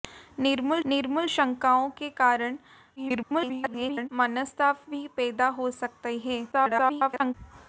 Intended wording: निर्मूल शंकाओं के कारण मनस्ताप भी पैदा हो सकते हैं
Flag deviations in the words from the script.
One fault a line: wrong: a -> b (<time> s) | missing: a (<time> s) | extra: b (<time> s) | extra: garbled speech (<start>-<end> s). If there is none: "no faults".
extra: निर्मूल (0.9 s)
extra: garbled speech (3.0-4.1 s)
extra: garbled speech (6.5-7.3 s)